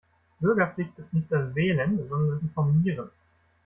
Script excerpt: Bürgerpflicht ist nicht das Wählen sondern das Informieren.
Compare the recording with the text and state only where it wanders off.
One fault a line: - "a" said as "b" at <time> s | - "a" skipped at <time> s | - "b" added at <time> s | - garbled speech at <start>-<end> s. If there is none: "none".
- "das" skipped at 2.4 s